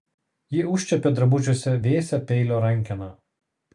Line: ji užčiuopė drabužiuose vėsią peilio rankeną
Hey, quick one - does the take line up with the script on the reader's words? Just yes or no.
yes